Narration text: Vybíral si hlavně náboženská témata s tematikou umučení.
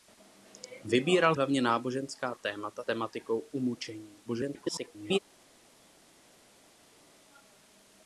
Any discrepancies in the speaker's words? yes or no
yes